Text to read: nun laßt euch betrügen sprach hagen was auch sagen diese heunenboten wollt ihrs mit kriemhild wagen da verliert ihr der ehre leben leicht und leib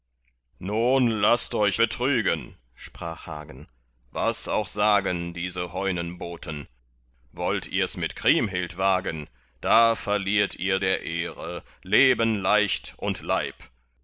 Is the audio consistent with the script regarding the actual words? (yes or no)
yes